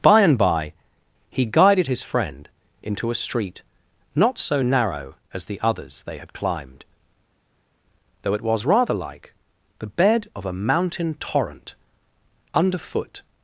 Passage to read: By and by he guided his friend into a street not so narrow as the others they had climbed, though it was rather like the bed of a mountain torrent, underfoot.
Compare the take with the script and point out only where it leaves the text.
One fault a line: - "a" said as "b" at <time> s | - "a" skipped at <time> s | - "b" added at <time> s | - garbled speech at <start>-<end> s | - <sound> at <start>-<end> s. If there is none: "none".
none